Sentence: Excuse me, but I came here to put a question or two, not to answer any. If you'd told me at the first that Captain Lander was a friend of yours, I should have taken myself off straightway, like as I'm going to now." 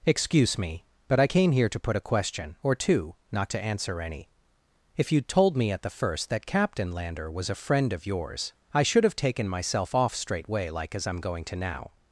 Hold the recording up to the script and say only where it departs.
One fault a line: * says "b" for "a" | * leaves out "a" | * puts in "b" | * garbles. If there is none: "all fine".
all fine